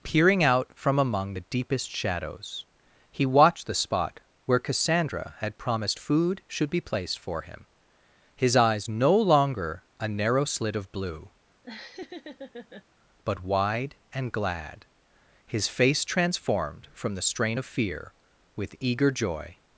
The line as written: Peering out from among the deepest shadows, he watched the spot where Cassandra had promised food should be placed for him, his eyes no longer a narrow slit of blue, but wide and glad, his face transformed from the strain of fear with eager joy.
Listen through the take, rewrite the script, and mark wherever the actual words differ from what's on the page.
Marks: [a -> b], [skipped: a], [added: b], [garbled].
Peering out from among the deepest shadows, he watched the spot where Cassandra had promised food should be placed for him, his eyes no longer a narrow slit of blue, but wide and glad, his face transformed from the strain of fear with eager joy.